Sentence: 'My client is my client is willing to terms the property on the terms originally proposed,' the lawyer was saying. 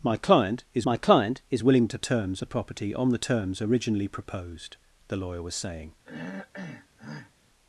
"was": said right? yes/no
yes